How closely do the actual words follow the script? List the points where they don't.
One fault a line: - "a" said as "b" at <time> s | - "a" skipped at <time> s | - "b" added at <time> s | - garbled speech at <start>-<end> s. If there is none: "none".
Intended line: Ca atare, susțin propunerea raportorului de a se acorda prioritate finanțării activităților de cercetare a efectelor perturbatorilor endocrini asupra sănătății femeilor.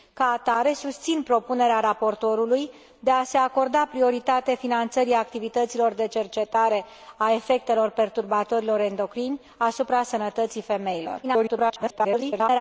- garbled speech at 11.2-12.6 s